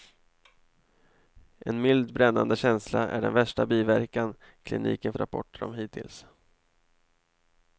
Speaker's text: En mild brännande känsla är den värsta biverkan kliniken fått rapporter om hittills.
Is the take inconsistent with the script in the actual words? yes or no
yes